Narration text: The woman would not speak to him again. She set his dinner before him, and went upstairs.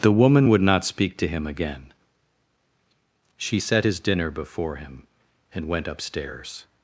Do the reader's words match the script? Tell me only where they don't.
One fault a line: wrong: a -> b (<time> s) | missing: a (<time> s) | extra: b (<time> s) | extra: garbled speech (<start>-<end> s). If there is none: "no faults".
no faults